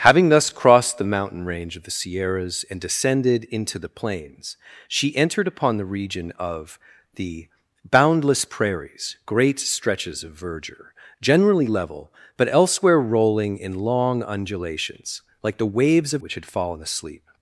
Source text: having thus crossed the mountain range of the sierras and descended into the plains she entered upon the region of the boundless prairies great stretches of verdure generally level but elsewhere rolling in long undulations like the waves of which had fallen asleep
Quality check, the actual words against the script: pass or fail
pass